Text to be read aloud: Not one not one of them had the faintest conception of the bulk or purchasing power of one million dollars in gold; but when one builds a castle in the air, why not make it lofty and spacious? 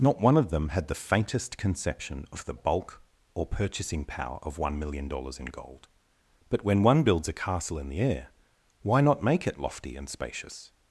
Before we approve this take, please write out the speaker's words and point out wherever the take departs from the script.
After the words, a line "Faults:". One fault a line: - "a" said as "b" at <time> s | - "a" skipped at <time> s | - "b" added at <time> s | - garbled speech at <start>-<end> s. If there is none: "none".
Not one of them had the faintest conception of the bulk or purchasing power of one million dollars in gold; but when one builds a castle in the air, why not make it lofty and spacious?
Faults:
- "not one" skipped at 0.3 s